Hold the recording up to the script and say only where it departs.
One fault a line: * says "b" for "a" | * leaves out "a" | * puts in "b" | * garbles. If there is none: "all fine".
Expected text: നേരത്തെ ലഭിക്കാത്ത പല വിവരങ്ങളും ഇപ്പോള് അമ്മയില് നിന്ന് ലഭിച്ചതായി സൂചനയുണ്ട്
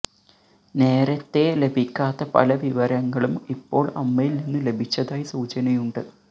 all fine